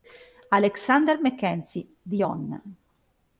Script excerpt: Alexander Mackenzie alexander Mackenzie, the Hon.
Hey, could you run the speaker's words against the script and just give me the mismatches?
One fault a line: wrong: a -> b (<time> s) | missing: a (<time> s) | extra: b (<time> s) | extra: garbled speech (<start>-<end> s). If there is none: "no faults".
missing: alexander Mackenzie (1.9 s)